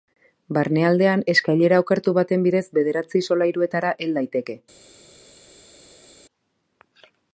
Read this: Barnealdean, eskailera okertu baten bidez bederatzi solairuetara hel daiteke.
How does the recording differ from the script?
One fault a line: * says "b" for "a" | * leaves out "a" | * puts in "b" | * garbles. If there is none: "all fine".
all fine